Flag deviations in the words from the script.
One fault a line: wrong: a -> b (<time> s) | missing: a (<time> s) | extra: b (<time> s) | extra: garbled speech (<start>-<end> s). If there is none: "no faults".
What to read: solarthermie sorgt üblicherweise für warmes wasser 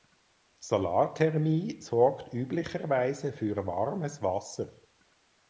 no faults